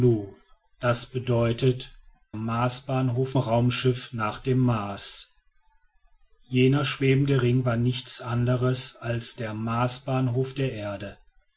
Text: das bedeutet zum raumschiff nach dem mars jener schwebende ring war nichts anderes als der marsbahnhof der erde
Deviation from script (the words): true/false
true